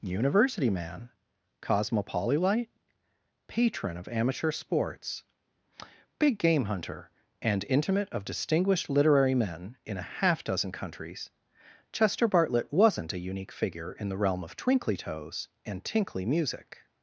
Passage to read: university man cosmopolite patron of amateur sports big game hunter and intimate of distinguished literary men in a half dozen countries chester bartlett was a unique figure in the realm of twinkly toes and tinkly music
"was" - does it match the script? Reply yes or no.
no